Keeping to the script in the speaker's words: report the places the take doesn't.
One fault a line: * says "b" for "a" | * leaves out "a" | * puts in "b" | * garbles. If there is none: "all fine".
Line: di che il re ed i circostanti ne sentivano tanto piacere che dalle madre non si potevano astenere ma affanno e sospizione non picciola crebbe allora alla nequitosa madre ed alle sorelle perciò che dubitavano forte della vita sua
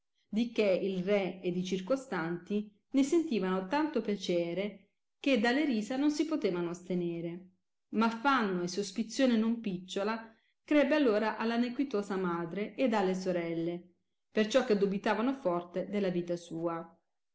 * says "risa" for "madre"